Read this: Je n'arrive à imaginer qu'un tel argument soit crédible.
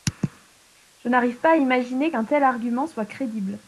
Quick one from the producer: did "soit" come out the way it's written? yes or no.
yes